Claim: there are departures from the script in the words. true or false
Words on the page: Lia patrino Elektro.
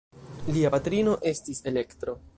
true